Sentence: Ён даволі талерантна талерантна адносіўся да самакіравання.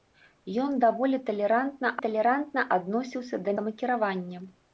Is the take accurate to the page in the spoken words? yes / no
yes